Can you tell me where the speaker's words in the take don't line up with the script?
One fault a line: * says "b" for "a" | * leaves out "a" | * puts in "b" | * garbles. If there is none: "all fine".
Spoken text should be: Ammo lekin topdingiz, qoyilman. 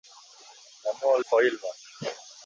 * leaves out "lekin topdingiz"